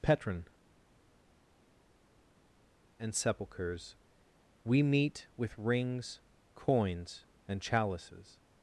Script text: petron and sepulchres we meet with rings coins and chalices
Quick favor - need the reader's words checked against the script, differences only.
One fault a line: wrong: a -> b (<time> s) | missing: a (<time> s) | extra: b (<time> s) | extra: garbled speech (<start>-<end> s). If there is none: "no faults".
no faults